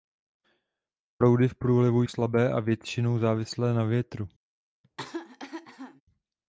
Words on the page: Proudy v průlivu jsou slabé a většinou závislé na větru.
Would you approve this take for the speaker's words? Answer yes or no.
no